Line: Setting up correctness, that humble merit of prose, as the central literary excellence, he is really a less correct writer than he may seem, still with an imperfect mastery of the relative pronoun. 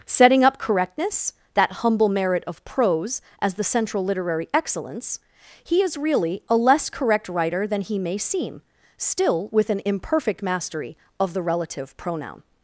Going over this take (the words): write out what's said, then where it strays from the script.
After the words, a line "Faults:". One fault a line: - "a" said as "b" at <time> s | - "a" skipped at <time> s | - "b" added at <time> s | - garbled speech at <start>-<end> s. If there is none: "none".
Setting up correctness, that humble merit of prose, as the central literary excellence, he is really a less correct writer than he may seem, still with an imperfect mastery of the relative pronoun.
Faults:
none